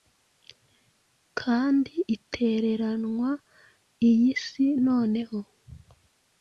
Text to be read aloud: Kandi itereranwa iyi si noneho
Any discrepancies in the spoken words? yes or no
no